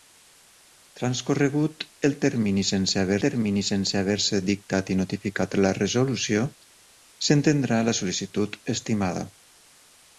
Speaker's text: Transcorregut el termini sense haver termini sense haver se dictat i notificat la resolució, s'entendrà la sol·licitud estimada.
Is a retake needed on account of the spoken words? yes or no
no